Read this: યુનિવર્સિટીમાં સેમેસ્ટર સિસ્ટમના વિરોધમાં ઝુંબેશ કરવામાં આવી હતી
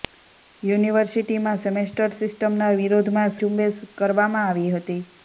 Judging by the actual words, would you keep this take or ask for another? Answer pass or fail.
pass